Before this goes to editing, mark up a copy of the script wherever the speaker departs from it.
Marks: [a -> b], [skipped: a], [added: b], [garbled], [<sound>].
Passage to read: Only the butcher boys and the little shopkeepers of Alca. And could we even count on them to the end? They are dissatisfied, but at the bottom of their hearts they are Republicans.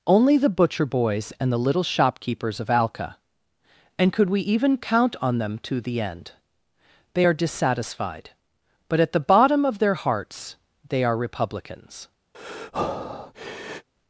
Only the butcher boys and the little shopkeepers of Alca. And could we even count on them to the end? They are dissatisfied, but at the bottom of their hearts they are Republicans. [breath]